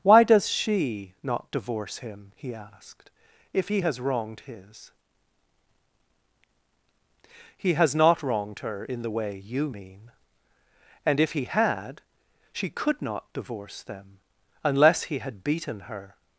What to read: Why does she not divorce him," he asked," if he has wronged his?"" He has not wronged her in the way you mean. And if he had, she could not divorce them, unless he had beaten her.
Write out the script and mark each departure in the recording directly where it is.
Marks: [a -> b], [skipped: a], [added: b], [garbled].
Why does she not divorce him," he asked," if he has wronged his?"" He has not wronged her in the way you mean. And if he had, she could not divorce them, unless he had beaten her.